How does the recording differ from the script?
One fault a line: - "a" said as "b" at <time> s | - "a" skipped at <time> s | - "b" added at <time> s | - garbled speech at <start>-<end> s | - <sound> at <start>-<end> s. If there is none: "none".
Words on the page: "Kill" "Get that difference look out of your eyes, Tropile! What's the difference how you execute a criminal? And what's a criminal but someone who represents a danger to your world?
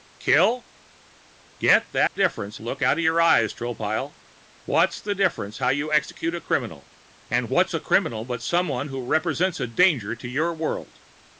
- dropout at 2.1-2.2 s